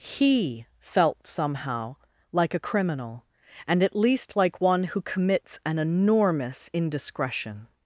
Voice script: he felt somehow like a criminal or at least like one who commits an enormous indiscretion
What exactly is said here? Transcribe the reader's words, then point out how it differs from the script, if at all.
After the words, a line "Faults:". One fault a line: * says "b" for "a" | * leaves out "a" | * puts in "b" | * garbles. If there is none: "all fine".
he felt somehow like a criminal and at least like one who commits an enormous indiscretion
Faults:
* says "and" for "or"